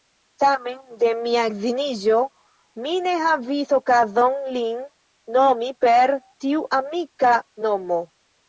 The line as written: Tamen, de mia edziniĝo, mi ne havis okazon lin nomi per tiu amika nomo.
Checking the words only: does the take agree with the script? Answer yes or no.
yes